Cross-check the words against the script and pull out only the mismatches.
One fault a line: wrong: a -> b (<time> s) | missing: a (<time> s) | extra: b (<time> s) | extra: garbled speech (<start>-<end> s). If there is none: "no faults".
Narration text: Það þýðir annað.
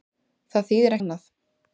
no faults